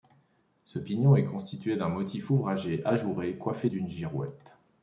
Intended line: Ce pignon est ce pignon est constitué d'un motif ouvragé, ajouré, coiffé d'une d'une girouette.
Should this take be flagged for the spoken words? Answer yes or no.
yes